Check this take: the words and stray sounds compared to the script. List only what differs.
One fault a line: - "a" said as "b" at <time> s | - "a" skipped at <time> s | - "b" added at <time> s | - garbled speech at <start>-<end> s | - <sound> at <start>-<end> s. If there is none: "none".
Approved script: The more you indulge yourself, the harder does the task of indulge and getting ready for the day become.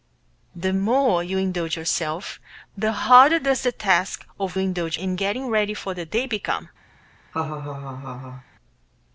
- laugh at 7.3-8.4 s